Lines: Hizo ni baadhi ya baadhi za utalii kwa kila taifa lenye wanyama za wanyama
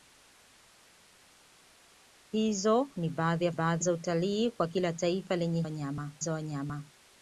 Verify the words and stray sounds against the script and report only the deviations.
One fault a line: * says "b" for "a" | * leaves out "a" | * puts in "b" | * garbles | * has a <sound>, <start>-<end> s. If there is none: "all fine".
all fine